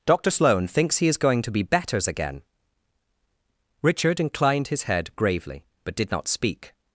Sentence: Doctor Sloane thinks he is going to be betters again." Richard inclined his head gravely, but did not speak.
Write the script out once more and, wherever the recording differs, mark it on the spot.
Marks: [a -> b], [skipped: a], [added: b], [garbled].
Doctor Sloane thinks he is going to be betters again." Richard inclined his head gravely, but did not speak.